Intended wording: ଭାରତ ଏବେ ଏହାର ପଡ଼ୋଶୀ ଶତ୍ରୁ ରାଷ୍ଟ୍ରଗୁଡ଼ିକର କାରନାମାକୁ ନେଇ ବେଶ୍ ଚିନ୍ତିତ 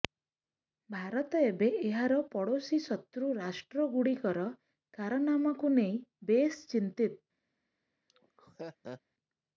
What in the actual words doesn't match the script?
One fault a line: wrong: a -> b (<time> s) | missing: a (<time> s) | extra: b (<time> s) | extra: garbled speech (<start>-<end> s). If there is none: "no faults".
no faults